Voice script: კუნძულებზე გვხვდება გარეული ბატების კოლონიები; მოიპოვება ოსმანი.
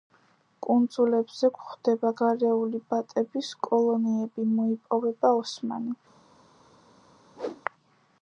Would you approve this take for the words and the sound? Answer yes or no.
no